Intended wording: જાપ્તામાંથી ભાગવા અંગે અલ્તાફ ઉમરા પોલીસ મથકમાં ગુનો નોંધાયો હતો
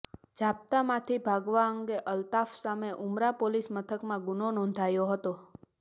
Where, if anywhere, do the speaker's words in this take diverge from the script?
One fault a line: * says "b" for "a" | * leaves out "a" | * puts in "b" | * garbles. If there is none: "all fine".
* puts in "સામે"